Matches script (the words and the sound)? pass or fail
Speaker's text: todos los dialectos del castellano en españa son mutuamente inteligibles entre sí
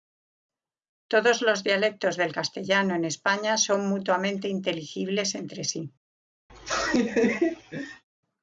fail